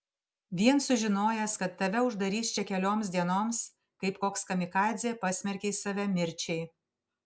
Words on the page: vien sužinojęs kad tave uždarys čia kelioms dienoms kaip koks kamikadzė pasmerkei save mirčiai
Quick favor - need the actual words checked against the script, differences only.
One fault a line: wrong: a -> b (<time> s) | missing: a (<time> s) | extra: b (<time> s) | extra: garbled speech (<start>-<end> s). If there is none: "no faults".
no faults